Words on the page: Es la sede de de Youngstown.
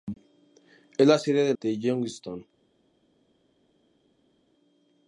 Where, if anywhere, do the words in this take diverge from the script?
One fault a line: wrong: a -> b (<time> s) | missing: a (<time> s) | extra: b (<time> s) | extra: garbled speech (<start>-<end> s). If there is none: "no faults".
no faults